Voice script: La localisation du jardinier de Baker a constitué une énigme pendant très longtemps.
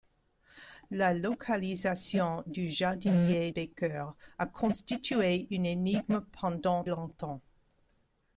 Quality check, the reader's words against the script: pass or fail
fail